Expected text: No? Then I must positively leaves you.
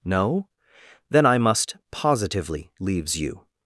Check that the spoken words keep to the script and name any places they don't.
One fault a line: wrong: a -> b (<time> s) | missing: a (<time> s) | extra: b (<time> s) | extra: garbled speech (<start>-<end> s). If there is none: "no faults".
no faults